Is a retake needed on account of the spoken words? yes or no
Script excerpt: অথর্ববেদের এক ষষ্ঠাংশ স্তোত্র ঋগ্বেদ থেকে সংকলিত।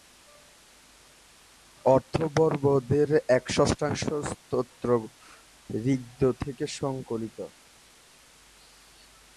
no